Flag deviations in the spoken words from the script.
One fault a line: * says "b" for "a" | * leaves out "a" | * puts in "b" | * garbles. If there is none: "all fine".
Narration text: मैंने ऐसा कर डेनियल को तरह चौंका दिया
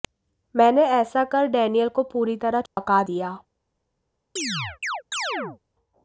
* puts in "पूरी"